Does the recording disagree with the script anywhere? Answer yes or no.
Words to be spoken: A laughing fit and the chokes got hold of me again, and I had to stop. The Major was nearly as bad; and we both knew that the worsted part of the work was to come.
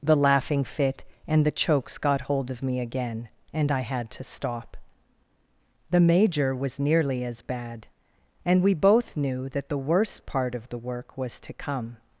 yes